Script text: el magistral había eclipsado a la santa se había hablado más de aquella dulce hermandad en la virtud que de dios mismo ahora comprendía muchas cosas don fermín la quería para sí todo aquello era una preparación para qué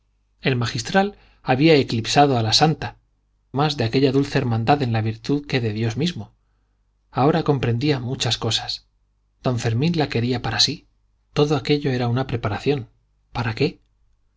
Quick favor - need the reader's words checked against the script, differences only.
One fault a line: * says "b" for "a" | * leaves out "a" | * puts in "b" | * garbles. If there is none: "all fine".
* leaves out "se había hablado"